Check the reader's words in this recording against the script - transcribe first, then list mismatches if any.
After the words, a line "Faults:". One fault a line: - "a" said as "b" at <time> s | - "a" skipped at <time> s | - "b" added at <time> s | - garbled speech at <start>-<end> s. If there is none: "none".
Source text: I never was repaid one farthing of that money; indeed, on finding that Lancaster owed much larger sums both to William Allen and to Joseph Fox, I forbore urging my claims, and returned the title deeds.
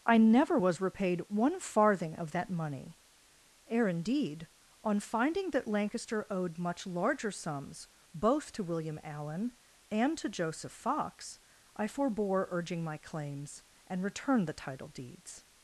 I never was repaid one farthing of that money; ere indeed, on finding that Lancaster owed much larger sums both to William Allen and to Joseph Fox, I forbore urging my claims, and returned the title deeds.
Faults:
- "ere" added at 3.7 s